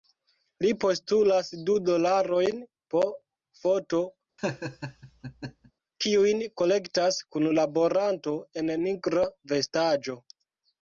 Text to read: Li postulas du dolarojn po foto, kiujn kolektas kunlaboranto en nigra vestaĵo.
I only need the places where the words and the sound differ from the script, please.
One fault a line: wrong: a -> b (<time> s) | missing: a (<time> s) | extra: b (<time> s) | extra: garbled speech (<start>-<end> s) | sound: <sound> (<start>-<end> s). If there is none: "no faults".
sound: laugh (4.4-5.7 s)